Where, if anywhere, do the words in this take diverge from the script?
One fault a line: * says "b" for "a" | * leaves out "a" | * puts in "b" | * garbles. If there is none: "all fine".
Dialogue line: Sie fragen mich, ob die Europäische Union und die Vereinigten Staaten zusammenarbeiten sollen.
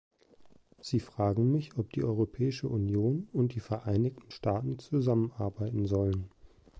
all fine